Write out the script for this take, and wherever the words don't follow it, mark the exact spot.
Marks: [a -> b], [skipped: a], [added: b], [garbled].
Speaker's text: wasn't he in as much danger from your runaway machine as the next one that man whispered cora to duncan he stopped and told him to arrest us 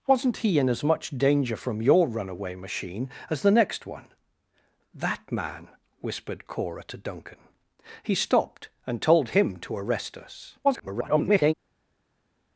wasn't he in as much danger from your runaway machine as the next one that man whispered cora to duncan he stopped and told him to arrest us [garbled]